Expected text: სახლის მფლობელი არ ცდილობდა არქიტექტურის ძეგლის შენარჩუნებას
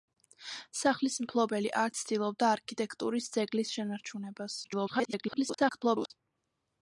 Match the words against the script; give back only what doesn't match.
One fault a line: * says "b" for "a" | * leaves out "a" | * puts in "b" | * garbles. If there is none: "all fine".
* garbles